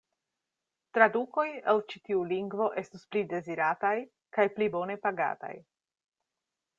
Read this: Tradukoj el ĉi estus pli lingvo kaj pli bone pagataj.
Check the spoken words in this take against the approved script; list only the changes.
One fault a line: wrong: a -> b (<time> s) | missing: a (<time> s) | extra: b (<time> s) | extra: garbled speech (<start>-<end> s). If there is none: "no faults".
extra: tiu lingvo (2.1 s)
wrong: lingvo -> dezirataj (3.3 s)